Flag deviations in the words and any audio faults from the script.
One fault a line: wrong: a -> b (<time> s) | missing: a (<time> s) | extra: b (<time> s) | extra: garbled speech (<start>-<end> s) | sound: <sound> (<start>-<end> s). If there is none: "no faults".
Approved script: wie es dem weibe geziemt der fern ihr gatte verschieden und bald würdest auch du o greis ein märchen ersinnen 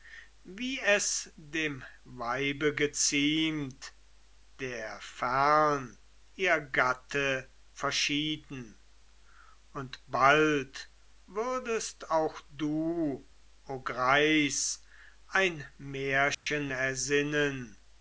sound: dropout (16.3-16.5 s)